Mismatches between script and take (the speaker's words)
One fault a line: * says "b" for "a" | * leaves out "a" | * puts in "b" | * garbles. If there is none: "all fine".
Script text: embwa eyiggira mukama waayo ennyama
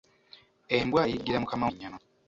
* leaves out "waayo"